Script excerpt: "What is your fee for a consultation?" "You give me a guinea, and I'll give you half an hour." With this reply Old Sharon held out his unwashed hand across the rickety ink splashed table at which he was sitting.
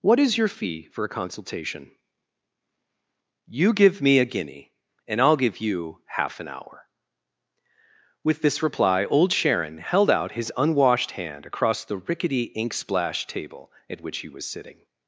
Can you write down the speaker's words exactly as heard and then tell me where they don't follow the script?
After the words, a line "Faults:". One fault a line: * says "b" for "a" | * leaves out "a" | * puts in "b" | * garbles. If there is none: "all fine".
"What is your fee for a consultation?" "You give me a guinea, and I'll give you half an hour." With this reply Old Sharon held out his unwashed hand across the rickety ink splashed table at which he was sitting.
Faults:
all fine